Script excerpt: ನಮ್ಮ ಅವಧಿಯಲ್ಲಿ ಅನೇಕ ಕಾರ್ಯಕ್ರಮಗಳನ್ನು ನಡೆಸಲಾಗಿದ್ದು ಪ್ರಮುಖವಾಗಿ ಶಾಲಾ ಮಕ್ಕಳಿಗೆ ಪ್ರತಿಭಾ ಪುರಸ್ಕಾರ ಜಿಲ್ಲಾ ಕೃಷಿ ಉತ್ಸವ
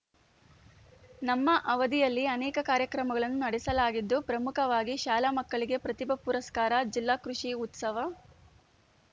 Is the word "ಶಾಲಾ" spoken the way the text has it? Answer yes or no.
yes